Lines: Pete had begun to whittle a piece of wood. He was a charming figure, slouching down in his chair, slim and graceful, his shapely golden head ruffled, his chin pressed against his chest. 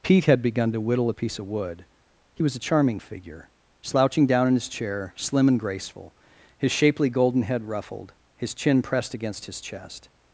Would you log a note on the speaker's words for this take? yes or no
no